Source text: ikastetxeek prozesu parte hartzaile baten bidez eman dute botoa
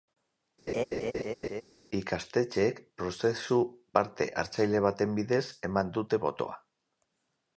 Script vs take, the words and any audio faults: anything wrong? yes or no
yes